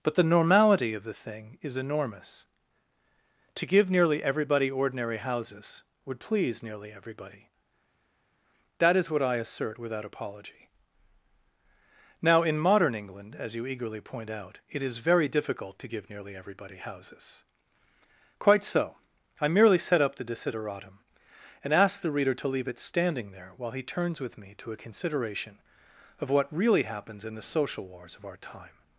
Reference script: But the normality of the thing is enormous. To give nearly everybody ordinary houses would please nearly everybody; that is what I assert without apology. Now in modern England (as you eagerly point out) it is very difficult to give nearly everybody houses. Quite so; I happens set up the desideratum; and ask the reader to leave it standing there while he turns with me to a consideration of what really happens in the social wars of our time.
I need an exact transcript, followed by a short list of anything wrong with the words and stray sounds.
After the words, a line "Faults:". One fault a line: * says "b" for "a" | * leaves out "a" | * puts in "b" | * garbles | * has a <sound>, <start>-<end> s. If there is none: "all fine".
But the normality of the thing is enormous. To give nearly everybody ordinary houses would please nearly everybody; that is what I assert without apology. Now in modern England (as you eagerly point out) it is very difficult to give nearly everybody houses. Quite so; I merely set up the desideratum; and ask the reader to leave it standing there while he turns with me to a consideration of what really happens in the social wars of our time.
Faults:
* says "merely" for "happens"